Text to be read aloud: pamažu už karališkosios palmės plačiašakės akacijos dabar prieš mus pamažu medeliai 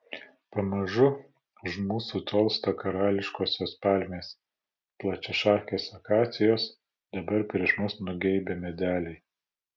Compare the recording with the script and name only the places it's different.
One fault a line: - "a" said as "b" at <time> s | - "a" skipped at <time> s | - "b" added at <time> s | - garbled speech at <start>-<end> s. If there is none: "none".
- "mūsų tolsta" added at 1.9 s
- "pamažu" said as "nugeibę" at 8.1 s